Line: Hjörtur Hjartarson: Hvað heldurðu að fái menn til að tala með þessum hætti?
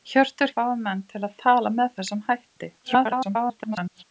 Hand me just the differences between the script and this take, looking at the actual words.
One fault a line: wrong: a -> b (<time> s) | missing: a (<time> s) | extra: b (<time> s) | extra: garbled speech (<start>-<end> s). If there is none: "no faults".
missing: Hjartarson Hvað heldurðu (0.5 s)
extra: garbled speech (2.8-4.0 s)